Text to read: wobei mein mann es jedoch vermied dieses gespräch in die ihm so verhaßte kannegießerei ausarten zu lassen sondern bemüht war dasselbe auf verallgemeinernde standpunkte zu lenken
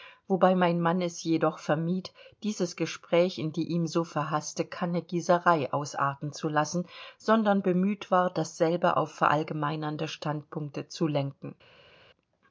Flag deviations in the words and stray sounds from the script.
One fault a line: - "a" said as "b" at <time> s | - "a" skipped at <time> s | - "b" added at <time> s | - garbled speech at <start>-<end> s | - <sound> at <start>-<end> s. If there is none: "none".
none